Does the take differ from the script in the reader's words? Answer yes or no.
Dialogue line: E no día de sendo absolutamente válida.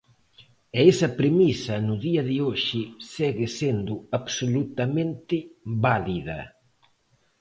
yes